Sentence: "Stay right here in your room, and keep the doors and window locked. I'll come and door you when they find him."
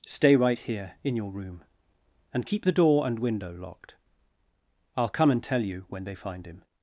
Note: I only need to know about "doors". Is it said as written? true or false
false